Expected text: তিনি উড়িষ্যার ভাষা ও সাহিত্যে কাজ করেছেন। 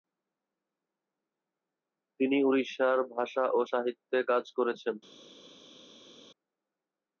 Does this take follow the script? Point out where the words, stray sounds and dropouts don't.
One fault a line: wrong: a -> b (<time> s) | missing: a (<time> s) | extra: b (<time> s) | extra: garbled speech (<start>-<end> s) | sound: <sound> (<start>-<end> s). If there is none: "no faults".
no faults